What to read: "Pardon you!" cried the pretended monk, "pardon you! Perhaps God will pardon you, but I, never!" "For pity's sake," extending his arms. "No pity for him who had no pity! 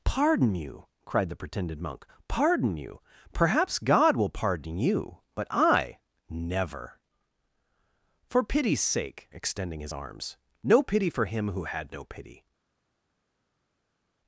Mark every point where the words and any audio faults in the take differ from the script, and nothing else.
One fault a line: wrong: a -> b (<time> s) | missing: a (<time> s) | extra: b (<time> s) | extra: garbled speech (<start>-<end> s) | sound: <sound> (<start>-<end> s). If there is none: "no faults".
no faults